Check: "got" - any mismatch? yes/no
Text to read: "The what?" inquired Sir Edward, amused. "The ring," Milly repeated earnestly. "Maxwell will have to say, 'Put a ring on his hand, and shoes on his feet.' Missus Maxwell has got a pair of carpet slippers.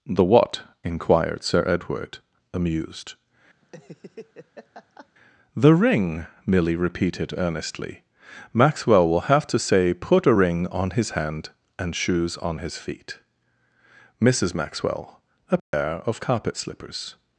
yes